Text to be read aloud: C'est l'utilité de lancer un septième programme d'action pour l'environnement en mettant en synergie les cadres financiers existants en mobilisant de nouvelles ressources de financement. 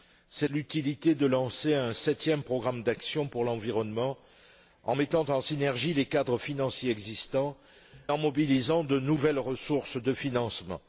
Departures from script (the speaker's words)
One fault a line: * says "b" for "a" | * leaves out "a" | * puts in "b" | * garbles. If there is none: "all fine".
all fine